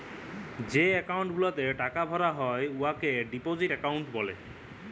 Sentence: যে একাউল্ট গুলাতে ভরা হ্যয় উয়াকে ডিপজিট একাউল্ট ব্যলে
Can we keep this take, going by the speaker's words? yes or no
no